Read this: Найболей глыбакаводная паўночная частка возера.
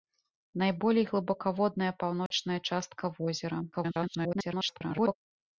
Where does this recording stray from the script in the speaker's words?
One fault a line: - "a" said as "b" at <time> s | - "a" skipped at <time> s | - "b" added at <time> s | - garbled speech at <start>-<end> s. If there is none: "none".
- garbled speech at 3.7-5.2 s